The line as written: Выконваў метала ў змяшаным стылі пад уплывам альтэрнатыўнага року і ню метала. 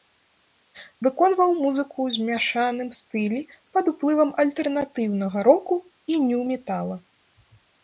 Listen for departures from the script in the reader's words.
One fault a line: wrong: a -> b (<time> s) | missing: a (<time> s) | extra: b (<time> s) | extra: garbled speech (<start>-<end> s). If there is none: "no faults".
wrong: метала -> музыку (1.6 s)